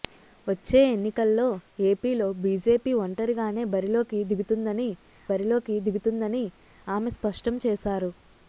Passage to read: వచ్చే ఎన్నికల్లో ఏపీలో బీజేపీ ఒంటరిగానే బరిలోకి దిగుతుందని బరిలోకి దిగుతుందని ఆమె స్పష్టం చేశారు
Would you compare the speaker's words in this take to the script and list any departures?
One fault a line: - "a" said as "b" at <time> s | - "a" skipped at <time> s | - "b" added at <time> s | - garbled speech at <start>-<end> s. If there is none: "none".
none